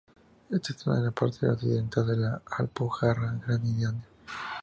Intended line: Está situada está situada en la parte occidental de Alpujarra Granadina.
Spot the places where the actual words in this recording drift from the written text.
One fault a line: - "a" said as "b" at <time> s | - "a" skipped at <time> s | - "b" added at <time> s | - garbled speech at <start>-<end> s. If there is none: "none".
- "está situada" skipped at 1.0 s
- "la" added at 2.2 s